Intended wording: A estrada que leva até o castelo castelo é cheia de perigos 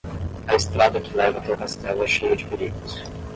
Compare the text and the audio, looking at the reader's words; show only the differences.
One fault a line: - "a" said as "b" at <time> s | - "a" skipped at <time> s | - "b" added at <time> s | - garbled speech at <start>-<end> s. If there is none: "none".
- "castelo" skipped at 2.1 s